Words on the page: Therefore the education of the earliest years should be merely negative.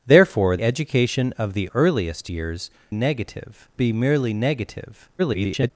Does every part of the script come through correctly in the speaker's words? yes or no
no